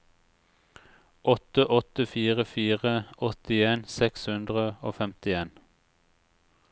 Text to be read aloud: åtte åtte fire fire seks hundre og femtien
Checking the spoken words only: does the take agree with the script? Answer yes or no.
no